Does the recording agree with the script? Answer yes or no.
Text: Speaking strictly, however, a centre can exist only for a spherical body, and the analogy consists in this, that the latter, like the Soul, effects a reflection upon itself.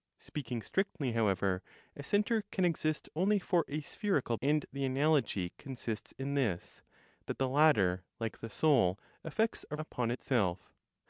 no